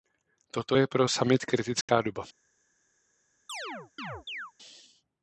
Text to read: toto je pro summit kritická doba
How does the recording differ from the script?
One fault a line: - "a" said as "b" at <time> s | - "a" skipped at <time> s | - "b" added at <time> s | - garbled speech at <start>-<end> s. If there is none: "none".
none